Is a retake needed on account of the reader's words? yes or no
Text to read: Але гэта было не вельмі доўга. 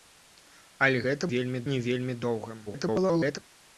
yes